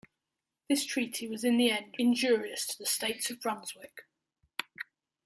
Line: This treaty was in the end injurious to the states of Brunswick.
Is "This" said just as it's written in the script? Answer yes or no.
yes